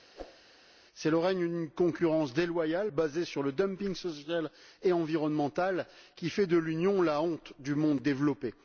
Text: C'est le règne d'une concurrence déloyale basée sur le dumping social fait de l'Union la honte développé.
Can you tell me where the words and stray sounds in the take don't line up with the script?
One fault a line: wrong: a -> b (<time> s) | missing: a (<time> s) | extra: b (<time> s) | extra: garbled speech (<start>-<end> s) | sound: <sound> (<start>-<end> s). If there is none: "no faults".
sound: whoosh (0.1-0.4 s)
extra: et environnemental qui (4.8 s)
extra: du monde (7.6 s)